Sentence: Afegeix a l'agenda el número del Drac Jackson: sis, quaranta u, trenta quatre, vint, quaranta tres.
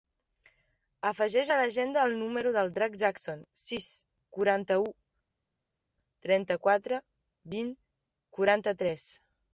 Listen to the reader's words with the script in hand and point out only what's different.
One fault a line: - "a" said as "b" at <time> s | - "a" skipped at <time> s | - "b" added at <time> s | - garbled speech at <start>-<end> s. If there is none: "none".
none